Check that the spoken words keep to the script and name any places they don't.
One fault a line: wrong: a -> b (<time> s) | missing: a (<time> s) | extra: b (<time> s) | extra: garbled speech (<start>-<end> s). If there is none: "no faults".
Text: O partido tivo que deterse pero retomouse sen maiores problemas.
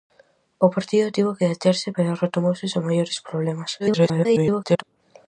extra: garbled speech (3.8-4.8 s)